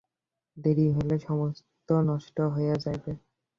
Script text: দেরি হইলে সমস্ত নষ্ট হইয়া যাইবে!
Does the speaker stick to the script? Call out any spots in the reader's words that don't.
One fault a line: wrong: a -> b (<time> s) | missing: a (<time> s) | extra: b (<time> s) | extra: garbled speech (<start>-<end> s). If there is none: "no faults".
no faults